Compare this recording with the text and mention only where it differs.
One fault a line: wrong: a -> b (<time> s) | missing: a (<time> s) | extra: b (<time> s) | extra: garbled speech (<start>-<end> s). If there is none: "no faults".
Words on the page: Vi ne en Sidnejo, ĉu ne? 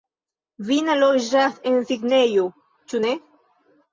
extra: loĝas (1.0 s)